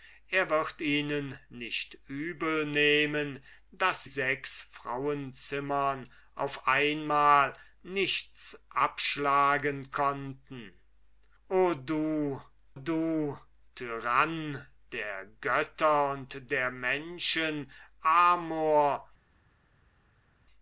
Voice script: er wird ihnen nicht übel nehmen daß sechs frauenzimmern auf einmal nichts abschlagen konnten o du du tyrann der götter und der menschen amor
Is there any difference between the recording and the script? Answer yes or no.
no